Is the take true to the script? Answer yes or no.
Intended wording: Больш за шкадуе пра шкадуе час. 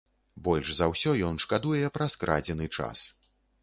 no